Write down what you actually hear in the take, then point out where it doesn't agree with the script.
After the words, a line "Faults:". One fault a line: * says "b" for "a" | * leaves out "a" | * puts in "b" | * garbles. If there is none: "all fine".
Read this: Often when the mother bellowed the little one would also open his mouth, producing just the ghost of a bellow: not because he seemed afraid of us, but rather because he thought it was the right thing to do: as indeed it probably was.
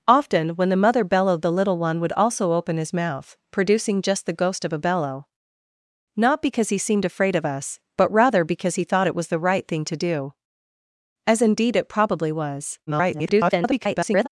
Often when the mother bellowed the little one would also open his mouth, producing just the ghost of a bellow: not because he seemed afraid of us, but rather because he thought it was the right thing to do: as indeed it probably was. [garbled]
Faults:
* garbles